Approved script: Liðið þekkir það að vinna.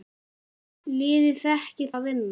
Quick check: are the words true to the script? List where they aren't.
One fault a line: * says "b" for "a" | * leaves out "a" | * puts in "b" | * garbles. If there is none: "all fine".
* leaves out "það"